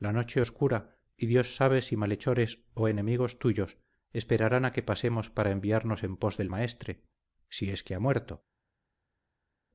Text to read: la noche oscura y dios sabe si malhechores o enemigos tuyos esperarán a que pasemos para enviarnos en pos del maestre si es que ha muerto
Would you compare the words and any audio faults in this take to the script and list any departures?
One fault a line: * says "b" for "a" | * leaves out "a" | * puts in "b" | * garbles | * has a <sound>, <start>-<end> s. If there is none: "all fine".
all fine